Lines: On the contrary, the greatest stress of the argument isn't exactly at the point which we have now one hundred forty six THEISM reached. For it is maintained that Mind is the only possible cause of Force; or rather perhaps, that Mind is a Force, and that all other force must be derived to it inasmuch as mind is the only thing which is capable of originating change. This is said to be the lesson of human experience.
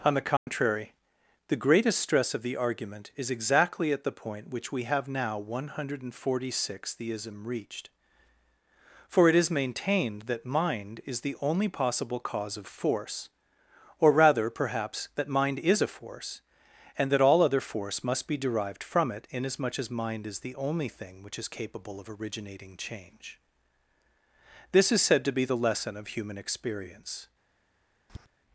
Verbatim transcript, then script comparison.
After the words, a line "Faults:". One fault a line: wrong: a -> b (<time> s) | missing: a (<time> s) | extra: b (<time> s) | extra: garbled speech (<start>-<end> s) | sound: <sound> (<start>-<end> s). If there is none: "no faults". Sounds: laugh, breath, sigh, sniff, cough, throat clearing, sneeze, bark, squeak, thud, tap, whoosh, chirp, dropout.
On the contrary, the greatest stress of the argument is exactly at the point which we have now one hundred forty six THEISM reached. For it is maintained that Mind is the only possible cause of Force; or rather perhaps, that Mind is a Force, and that all other force must be derived from it inasmuch as mind is the only thing which is capable of originating change. This is said to be the lesson of human experience.
Faults:
sound: dropout (0.4-0.5 s)
wrong: isn't -> is (3.2 s)
wrong: to -> from (18.8 s)
sound: tap (28.1-28.3 s)